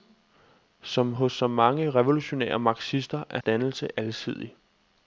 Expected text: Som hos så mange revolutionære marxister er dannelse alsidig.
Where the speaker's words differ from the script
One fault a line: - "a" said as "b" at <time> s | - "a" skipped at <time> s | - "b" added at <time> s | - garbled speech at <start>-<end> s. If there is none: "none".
none